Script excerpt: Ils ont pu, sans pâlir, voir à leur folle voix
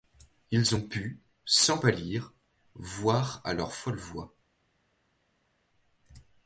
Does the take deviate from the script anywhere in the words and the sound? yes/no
no